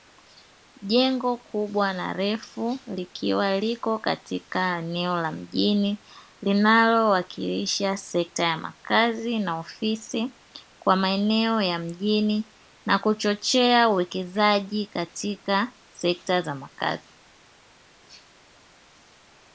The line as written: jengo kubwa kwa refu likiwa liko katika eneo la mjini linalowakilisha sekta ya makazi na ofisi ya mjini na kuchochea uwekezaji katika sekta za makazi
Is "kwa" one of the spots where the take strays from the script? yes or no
yes